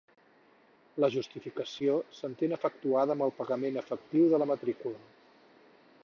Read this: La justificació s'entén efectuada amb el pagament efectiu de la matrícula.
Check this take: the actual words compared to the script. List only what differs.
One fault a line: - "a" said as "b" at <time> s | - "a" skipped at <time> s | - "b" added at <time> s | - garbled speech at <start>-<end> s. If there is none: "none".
none